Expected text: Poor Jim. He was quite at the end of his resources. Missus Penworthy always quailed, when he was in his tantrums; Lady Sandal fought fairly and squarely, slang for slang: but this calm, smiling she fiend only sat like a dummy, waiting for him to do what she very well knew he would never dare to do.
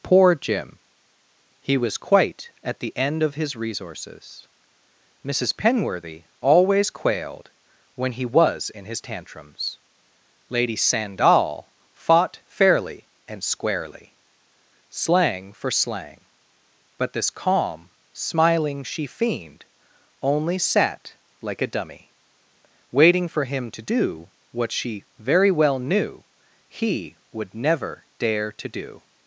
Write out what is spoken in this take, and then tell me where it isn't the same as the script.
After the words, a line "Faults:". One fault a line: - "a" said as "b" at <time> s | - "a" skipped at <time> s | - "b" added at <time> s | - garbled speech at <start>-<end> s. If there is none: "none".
Poor Jim. He was quite at the end of his resources. Missus Penworthy always quailed, when he was in his tantrums; Lady Sandal fought fairly and squarely, slang for slang: but this calm, smiling she fiend only sat like a dummy, waiting for him to do what she very well knew he would never dare to do.
Faults:
none